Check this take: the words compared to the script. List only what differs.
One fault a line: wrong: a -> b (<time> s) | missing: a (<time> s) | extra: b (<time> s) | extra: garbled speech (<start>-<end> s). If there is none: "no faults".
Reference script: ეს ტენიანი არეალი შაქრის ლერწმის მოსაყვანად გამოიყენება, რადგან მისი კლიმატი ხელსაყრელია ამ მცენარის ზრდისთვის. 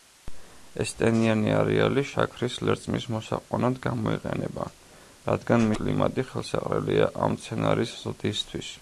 missing: მისი (5.7 s)